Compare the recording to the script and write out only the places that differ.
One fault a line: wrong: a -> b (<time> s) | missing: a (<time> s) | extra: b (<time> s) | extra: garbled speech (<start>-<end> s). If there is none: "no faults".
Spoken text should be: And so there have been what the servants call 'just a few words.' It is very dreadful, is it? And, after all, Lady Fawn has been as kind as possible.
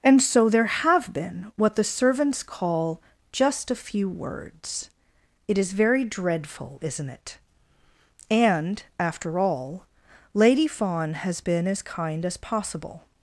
wrong: is -> isn't (6.8 s)